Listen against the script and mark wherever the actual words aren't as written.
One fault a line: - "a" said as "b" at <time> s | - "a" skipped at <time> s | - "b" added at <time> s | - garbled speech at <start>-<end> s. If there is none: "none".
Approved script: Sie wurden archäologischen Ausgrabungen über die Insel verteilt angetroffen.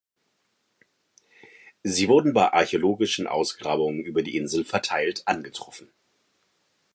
- "bei" added at 2.3 s